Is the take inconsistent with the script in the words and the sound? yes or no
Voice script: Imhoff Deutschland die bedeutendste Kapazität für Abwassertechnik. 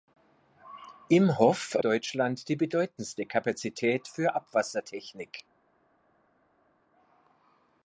no